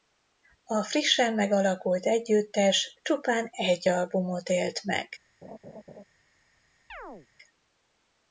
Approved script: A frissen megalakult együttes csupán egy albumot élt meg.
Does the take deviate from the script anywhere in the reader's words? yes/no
no